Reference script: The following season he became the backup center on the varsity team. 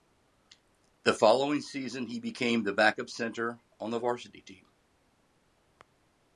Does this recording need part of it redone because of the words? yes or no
no